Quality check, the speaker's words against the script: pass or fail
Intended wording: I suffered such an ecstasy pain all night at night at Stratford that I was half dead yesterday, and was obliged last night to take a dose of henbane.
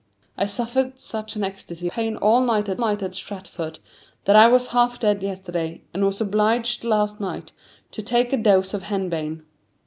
pass